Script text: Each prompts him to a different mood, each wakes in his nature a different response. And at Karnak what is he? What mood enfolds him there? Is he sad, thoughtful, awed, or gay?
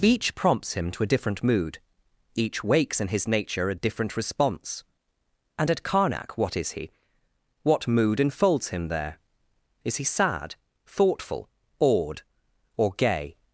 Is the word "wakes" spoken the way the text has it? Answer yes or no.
yes